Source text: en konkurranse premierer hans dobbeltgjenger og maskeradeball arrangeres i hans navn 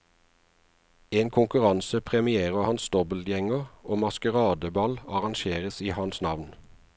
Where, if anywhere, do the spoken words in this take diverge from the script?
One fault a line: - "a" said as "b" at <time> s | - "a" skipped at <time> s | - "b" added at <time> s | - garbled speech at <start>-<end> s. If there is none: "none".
none